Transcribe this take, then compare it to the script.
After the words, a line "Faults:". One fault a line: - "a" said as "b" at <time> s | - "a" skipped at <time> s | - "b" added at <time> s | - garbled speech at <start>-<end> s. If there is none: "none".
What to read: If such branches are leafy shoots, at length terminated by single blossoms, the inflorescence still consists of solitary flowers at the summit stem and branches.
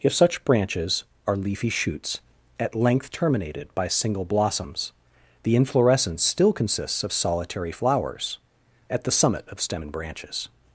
If such branches are leafy shoots, at length terminated by single blossoms, the inflorescence still consists of solitary flowers at the summit of stem and branches.
Faults:
- "of" added at 9.5 s